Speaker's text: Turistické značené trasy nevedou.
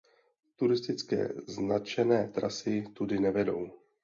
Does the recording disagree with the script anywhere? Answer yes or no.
yes